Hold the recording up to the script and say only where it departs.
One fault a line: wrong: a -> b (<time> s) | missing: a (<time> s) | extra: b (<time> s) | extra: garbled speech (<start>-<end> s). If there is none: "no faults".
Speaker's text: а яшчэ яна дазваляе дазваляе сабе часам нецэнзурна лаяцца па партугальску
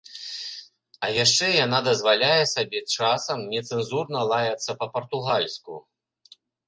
missing: дазваляе (2.4 s)